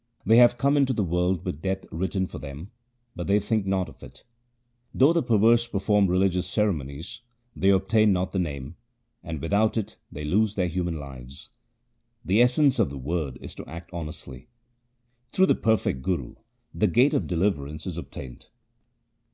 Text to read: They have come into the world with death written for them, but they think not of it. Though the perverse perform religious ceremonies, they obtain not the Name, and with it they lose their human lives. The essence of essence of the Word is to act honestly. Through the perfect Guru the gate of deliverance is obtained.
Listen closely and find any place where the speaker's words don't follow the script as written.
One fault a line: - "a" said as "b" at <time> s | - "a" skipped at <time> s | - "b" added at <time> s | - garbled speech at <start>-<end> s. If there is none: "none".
- "with" said as "without" at 9.4 s
- "essence of" skipped at 12.9 s